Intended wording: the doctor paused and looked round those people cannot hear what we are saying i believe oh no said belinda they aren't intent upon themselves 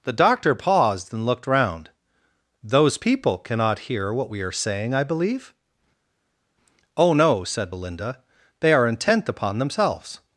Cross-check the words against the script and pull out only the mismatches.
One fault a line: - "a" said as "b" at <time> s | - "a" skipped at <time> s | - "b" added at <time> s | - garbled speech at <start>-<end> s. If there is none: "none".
- "aren't" said as "are" at 8.7 s